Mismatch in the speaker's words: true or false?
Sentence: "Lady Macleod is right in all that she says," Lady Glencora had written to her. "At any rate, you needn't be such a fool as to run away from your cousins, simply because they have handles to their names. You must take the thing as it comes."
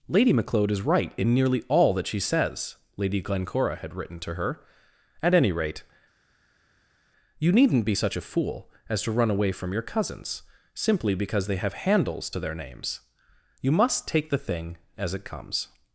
true